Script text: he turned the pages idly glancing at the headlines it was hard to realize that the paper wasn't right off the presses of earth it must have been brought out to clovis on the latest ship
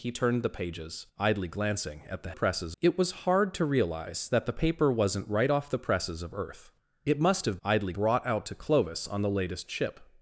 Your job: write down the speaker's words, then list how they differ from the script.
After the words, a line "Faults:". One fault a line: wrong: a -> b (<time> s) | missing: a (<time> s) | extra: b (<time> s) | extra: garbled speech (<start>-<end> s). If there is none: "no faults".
he turned the pages idly glancing at the presses it was hard to realize that the paper wasn't right off the presses of earth it must have idly brought out to clovis on the latest ship
Faults:
wrong: headlines -> presses (2.3 s)
wrong: been -> idly (7.6 s)